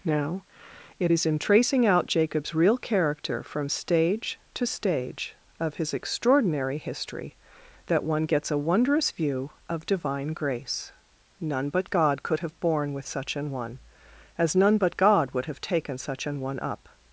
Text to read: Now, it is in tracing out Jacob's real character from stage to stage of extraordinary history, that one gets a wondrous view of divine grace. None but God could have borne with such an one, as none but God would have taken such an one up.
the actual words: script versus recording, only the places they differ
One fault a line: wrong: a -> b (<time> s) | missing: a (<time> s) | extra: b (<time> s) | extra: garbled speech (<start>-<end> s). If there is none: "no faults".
extra: his (5.8 s)